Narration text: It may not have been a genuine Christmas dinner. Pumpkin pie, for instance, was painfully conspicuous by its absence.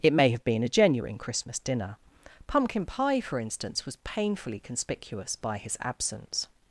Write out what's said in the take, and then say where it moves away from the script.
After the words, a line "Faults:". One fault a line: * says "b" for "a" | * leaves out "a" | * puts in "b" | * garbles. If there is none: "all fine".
It may have been a genuine Christmas dinner. Pumpkin pie, for instance, was painfully conspicuous by his absence.
Faults:
* leaves out "not"
* says "his" for "its"